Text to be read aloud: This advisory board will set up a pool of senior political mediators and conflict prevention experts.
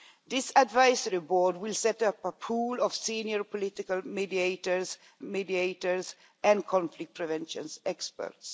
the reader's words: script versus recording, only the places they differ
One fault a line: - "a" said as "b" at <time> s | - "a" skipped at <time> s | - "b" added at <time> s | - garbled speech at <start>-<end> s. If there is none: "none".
- "mediators" added at 5.2 s